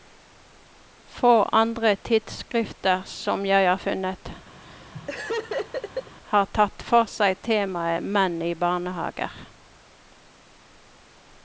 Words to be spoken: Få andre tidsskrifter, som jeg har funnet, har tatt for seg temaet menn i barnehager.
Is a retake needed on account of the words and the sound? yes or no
yes